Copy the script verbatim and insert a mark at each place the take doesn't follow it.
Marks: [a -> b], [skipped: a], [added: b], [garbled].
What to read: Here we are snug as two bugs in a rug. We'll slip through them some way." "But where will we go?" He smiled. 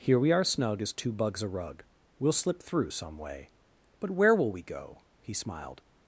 Here we are snug as two bugs [skipped: in] a rug. We'll slip through [skipped: them] some way." "But where will we go?" He smiled.